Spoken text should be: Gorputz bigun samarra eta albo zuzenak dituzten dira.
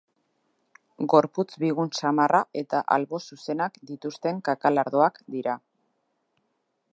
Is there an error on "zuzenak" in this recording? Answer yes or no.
no